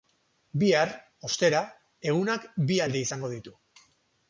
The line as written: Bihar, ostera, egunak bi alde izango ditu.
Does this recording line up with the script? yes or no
yes